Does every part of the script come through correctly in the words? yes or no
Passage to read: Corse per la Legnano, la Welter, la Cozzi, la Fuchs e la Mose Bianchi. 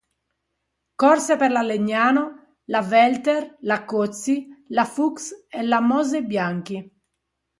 yes